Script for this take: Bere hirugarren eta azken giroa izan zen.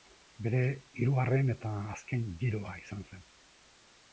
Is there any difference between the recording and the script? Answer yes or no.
no